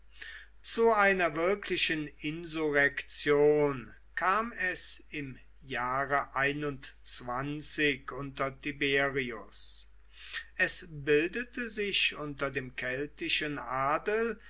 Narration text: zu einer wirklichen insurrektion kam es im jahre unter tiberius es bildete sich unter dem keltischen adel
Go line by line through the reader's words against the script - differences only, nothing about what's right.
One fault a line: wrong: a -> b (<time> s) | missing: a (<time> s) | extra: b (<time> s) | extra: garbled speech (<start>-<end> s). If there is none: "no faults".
no faults